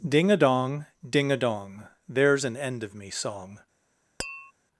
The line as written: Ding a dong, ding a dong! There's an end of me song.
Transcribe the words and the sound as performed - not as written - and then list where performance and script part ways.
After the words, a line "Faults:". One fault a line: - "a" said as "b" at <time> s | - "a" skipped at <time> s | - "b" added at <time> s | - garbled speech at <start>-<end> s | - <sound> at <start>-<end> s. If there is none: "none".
Ding a dong, ding a dong! There's an end of me song.
Faults:
- tap at 4.2-4.5 s